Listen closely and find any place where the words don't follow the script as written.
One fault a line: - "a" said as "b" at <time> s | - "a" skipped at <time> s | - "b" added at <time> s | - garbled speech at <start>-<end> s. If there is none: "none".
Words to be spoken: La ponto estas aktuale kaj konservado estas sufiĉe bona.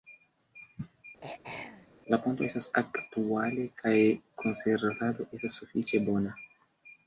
none